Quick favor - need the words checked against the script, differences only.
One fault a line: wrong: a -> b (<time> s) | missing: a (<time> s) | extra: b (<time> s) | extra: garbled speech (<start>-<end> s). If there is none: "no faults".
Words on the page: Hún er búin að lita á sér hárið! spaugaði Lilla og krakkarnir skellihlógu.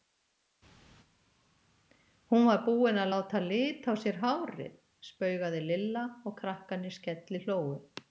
wrong: er -> var (2.5 s)
extra: láta (3.1 s)